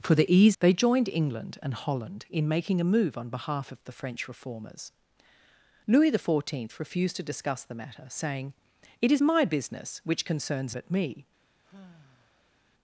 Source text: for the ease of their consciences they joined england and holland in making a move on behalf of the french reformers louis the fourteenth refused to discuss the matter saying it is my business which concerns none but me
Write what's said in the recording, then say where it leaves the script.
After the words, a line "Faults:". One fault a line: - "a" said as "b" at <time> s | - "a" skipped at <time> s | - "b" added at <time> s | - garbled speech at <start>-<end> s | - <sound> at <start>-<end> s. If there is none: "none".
for the ease they joined england and holland in making a move on behalf of the french reformers louis the fourteenth refused to discuss the matter saying it is my business which concerns but me
Faults:
- "of their consciences" skipped at 0.6 s
- "none" skipped at 10.8 s
- sigh at 11.6-12.6 s